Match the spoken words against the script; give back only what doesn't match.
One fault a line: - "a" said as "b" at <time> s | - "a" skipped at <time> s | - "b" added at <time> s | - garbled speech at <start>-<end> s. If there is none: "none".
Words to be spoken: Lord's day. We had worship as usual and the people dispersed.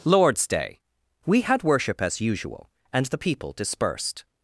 none